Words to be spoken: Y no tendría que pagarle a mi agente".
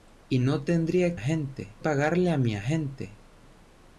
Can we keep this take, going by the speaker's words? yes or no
no